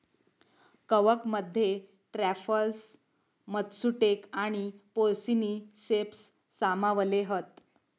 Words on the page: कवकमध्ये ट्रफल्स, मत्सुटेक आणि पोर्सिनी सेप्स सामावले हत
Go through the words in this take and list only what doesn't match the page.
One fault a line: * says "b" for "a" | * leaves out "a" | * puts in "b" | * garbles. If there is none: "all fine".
all fine